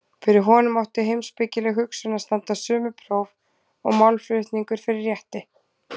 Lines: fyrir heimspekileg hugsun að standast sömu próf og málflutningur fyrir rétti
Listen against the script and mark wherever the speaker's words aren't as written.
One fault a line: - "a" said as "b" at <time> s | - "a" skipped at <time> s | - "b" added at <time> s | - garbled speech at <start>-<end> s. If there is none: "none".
- "honum átti" added at 0.5 s